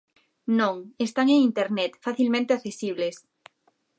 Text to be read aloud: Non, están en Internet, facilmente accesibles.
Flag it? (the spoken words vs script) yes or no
no